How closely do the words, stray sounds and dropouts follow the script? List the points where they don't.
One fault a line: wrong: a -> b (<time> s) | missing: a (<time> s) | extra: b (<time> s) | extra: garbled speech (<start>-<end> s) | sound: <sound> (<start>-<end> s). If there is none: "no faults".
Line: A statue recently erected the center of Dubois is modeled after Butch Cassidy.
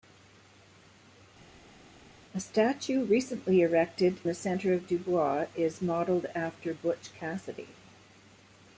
no faults